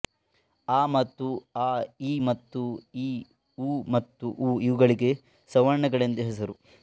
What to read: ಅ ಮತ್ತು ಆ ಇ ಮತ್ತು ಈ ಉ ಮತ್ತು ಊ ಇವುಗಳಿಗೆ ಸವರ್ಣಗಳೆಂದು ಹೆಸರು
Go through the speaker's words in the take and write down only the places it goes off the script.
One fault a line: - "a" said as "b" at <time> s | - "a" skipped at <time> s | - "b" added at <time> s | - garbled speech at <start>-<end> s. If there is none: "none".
none